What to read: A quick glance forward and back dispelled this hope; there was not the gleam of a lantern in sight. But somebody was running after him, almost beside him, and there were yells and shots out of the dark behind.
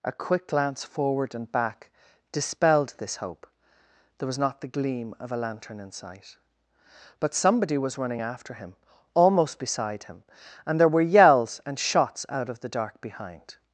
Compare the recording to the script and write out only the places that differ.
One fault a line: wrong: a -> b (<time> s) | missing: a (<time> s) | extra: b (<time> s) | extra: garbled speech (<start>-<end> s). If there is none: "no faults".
no faults